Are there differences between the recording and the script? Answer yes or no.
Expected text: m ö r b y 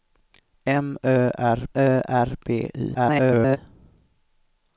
yes